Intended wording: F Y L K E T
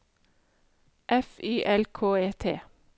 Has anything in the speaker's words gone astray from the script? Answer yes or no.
no